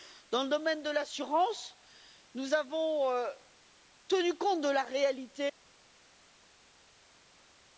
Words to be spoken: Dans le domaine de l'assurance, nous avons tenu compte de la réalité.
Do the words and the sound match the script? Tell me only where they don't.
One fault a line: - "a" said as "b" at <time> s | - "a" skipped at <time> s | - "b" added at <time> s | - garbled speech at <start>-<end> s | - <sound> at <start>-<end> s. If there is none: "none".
none